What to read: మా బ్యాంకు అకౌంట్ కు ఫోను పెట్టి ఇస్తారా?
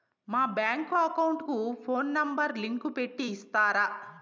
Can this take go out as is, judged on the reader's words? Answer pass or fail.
fail